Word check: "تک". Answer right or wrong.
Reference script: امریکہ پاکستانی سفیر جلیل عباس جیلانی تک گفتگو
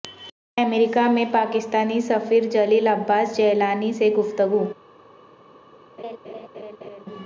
wrong